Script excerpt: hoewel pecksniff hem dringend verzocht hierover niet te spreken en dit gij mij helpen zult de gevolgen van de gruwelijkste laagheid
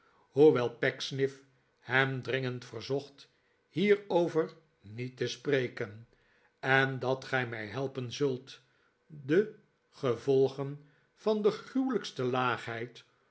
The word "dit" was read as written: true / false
false